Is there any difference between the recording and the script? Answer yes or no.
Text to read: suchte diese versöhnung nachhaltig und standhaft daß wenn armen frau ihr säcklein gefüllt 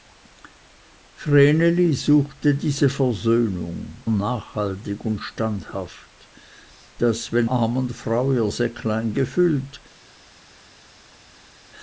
no